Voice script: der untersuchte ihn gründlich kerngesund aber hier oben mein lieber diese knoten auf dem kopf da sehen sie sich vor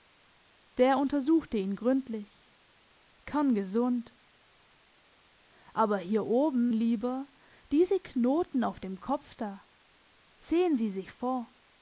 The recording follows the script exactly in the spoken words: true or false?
false